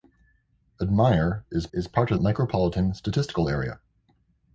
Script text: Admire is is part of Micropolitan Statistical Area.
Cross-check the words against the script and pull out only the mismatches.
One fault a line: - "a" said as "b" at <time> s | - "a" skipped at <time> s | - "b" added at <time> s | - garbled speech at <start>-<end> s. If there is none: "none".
none